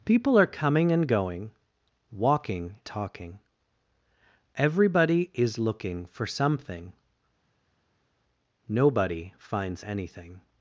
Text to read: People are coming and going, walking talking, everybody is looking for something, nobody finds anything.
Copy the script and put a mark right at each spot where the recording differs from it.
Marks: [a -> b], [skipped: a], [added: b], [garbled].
People are coming and going, walking talking, everybody is looking for something, nobody finds anything.